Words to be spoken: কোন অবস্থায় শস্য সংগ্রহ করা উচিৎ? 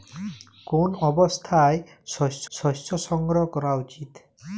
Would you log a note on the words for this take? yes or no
yes